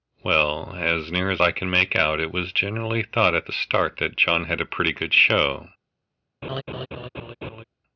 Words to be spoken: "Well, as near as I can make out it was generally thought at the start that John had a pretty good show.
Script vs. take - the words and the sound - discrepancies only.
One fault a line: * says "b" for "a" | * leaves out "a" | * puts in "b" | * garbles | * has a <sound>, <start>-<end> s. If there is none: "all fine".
* has a laugh, 6.4-7.6 s